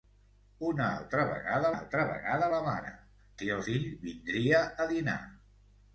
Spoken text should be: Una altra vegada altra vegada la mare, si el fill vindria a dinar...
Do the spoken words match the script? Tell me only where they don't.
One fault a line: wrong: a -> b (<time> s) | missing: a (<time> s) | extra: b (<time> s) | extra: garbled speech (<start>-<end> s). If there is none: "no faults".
no faults